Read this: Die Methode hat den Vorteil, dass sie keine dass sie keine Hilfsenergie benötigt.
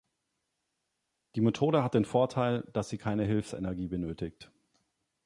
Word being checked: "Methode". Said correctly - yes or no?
yes